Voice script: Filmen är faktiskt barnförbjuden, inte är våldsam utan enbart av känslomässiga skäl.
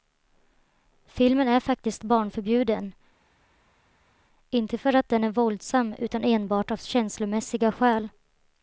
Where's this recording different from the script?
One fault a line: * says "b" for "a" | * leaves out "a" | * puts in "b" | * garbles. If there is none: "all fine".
* puts in "för att den"